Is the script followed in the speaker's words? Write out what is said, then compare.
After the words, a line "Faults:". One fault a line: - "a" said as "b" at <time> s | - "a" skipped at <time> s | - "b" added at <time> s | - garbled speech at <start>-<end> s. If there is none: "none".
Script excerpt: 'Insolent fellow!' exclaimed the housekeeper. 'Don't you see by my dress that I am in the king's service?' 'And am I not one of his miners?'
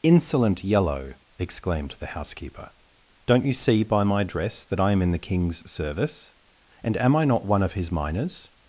'Insolent yellow!' exclaimed the housekeeper. 'Don't you see by my dress that I am in the king's service?' 'And am I not one of his miners?'
Faults:
- "fellow" said as "yellow" at 0.6 s